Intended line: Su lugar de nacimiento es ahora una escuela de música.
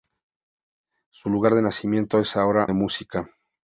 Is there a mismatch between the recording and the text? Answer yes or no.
yes